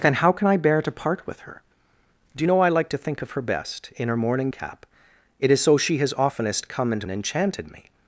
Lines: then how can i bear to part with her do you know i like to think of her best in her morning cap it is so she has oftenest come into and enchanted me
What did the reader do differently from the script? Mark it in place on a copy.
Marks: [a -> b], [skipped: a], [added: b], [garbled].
then how can i bear to part with her do you know i like to think of her best in her morning cap it is so she has oftenest come into and enchanted me